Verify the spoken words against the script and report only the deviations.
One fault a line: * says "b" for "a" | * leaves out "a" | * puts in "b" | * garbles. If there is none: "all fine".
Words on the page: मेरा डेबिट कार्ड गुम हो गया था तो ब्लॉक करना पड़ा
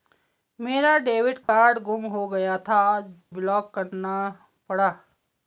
* leaves out "तो"